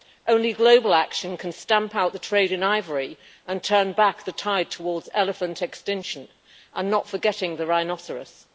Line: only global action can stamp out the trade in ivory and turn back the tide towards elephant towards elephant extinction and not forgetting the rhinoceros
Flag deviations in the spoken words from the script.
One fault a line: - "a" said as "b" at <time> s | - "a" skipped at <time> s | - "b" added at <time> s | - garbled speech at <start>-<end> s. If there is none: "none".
- "towards elephant" skipped at 5.6 s